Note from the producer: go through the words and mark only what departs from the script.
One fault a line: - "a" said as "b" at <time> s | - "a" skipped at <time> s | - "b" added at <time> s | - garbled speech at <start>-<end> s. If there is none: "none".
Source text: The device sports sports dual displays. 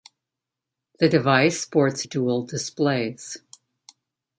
- "sports" skipped at 2.0 s